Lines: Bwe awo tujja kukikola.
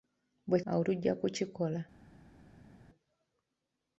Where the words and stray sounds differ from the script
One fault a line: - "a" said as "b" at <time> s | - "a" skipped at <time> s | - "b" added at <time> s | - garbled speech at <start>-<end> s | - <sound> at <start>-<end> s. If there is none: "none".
none